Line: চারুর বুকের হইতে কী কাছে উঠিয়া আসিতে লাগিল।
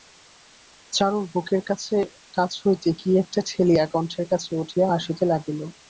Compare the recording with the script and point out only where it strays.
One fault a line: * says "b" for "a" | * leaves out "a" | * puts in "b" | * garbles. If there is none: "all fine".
* puts in "কাছ"
* puts in "একটা ঠেলিয়া কণ্ঠের"